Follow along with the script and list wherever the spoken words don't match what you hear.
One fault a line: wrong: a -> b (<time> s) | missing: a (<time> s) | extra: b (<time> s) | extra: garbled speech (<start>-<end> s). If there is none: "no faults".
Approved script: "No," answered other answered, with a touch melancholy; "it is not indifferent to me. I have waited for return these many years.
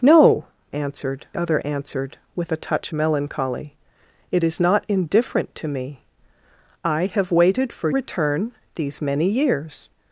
no faults